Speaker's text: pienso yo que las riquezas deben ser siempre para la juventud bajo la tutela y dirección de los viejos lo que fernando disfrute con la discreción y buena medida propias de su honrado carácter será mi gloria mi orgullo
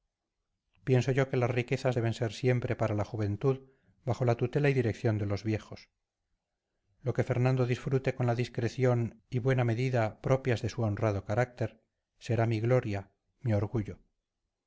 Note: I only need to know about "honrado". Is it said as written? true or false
true